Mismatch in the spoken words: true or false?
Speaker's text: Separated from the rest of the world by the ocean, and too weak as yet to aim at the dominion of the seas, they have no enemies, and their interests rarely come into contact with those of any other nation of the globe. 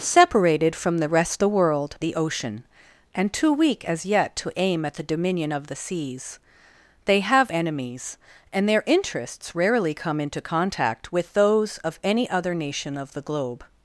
true